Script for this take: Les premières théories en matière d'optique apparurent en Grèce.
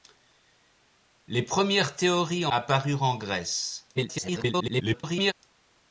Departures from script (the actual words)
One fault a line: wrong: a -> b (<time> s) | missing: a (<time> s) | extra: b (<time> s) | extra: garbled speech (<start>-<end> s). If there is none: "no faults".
missing: matière d'optique (2.5 s)
extra: garbled speech (4.0-5.3 s)